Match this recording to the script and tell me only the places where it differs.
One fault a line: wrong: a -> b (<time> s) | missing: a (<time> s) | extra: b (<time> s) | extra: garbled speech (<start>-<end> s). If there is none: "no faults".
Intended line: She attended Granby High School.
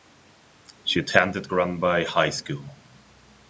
no faults